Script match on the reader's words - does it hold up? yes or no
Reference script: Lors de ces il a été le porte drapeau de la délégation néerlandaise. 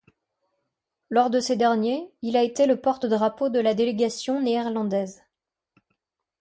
no